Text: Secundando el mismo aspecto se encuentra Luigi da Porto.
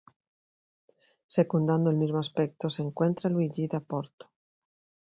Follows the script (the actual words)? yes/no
yes